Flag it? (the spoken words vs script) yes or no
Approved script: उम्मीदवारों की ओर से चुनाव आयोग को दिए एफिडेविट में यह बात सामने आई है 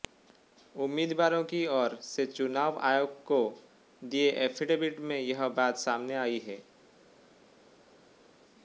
no